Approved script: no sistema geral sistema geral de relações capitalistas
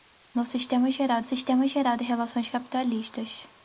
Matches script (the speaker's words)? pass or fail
pass